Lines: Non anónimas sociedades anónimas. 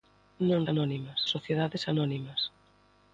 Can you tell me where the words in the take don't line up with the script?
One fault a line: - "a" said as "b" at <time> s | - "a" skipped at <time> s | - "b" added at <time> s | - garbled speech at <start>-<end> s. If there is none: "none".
none